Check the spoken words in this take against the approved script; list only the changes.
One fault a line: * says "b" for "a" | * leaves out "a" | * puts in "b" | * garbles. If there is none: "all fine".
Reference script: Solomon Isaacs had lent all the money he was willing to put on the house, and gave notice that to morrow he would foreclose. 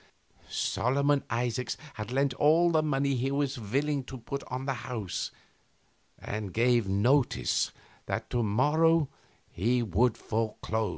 all fine